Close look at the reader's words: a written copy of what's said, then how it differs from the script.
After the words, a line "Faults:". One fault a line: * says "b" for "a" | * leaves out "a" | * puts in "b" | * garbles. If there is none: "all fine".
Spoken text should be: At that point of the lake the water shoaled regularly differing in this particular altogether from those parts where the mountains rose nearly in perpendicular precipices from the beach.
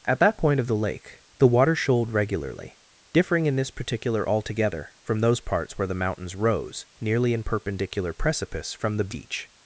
At that point of the lake the water shoaled regularly differing in this particular altogether from those parts where the mountains rose nearly in perpendicular precipice from the beach.
Faults:
* says "precipice" for "precipices"